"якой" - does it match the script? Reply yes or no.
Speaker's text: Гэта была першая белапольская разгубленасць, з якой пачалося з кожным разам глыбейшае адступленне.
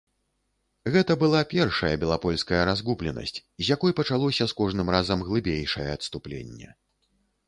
yes